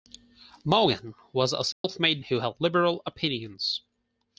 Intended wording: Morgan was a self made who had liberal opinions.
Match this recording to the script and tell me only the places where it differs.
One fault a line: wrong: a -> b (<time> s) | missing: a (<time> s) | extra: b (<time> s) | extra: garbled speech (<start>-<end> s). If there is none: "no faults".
no faults